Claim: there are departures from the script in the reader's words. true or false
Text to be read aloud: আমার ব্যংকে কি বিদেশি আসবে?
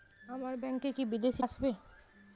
false